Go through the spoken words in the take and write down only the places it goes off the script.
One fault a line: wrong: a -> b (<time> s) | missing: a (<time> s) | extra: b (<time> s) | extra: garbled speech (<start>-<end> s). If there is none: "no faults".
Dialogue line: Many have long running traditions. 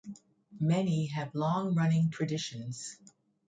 no faults